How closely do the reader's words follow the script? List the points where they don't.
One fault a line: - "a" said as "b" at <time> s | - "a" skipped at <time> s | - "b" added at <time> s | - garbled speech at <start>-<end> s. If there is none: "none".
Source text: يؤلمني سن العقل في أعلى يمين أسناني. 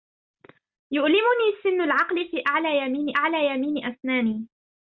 - "أعلى يمين" added at 3.2 s